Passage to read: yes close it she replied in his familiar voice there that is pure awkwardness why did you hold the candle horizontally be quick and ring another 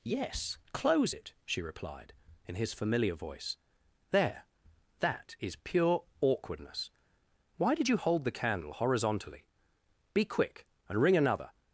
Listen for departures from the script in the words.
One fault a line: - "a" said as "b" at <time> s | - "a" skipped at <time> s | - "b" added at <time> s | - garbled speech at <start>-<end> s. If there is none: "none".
none